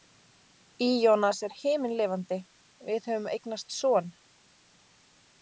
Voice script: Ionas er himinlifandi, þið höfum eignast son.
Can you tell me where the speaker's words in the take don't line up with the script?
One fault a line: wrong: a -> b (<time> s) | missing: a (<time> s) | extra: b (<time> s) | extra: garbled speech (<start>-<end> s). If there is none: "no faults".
wrong: þið -> við (2.9 s)